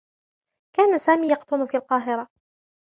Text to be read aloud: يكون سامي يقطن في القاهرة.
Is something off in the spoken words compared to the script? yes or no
yes